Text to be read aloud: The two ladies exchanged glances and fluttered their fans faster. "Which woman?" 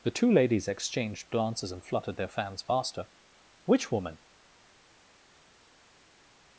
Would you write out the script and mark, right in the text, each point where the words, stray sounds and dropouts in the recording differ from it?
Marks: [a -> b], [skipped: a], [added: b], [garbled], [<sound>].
The two ladies exchanged glances and fluttered their fans faster. "Which woman?"